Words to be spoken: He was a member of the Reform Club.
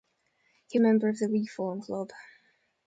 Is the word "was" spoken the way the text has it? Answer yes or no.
no